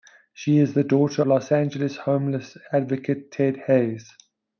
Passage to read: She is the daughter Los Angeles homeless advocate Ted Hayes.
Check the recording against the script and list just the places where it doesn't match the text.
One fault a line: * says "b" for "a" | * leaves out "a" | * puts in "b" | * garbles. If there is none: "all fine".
all fine